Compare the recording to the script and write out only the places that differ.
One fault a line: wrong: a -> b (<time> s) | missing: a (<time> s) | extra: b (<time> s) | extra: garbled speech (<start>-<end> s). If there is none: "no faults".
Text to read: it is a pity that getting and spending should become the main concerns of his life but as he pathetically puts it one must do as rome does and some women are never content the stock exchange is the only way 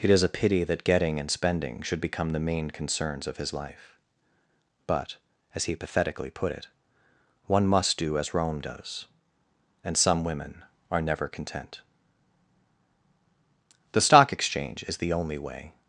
wrong: puts -> put (6.3 s)